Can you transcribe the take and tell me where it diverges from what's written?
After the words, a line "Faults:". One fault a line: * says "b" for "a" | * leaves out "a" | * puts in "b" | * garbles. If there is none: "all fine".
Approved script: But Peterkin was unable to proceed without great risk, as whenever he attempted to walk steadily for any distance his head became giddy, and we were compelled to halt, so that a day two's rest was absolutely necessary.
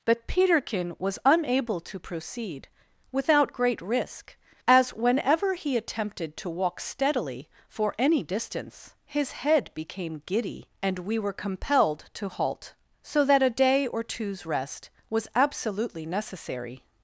But Peterkin was unable to proceed without great risk, as whenever he attempted to walk steadily for any distance his head became giddy, and we were compelled to halt, so that a day or two's rest was absolutely necessary.
Faults:
* puts in "or"